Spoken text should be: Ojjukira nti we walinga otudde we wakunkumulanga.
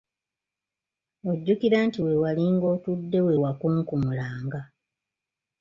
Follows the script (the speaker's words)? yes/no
yes